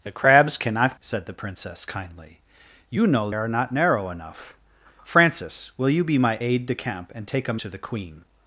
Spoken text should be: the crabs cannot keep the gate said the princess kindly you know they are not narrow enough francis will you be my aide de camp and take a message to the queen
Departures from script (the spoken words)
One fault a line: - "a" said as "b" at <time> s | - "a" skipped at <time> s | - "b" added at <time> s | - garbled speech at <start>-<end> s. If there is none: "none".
- "keep the gate" skipped at 1.0 s
- "they" skipped at 3.3 s
- "message" skipped at 7.6 s